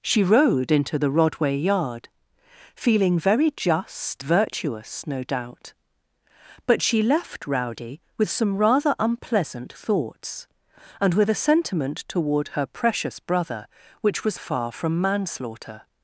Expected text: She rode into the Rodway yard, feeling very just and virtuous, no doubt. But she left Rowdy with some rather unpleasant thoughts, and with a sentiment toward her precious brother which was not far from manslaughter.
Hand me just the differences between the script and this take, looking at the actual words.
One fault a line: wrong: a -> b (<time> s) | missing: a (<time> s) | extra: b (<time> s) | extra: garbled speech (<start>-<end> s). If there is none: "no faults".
missing: and (4.2 s)
missing: not (14.4 s)